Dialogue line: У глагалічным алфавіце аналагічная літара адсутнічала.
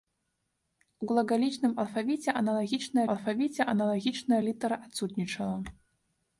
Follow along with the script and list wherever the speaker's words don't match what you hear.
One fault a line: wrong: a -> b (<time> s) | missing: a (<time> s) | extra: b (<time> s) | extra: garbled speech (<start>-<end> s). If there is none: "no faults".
extra: алфавіце аналагічная (3.1 s)